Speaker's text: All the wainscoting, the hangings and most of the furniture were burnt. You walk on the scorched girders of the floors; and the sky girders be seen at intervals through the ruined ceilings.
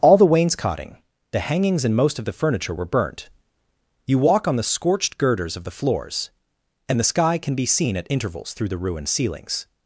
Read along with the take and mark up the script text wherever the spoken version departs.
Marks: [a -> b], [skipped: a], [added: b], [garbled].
All the wainscoting, the hangings and most of the furniture were burnt. You walk on the scorched girders of the floors; and the sky [girders -> can] be seen at intervals through the ruined ceilings.